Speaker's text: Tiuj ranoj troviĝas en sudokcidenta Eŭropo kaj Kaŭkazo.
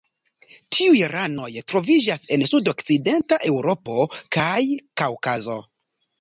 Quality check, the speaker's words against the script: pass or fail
pass